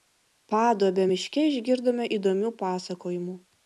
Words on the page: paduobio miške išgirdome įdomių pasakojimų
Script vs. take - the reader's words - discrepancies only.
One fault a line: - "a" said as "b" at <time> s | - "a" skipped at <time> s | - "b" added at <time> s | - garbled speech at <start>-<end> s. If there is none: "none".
none